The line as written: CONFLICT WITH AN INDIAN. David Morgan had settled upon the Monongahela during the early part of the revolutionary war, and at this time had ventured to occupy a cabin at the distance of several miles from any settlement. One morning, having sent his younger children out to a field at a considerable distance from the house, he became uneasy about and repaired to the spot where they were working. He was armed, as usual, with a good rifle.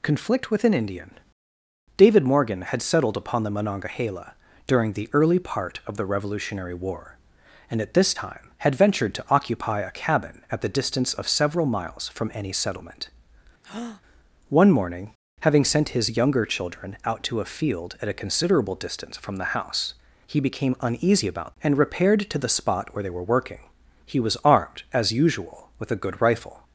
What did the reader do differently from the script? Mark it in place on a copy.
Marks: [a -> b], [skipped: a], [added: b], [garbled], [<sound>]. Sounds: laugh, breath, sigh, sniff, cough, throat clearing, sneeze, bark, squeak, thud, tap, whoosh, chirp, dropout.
CONFLICT WITH AN INDIAN. David Morgan had settled upon the Monongahela during the early part of the revolutionary war, and at this time had ventured to occupy a cabin at the distance of several miles from any settlement. [breath] One morning, having sent his younger children out to a field at a considerable distance from the house, he became uneasy about and repaired to the spot where they were working. He was armed, as usual, with a good rifle.